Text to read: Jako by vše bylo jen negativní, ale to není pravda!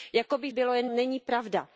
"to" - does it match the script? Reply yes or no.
no